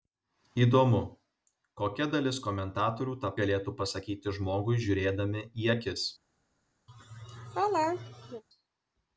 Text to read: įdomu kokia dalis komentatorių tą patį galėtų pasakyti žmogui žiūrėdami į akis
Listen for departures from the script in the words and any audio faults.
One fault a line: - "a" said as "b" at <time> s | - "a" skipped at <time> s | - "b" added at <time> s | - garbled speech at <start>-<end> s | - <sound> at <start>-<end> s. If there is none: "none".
- "patį" skipped at 3.3 s
- laugh at 6.9-8.4 s